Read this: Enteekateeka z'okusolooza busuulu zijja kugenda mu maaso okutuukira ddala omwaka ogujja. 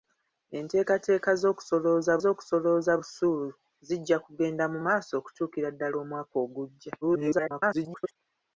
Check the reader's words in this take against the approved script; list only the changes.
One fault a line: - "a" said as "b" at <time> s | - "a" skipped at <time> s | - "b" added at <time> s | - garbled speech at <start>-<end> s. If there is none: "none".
- "z'okusolooza" added at 2.2 s
- garbled speech at 7.0-8.2 s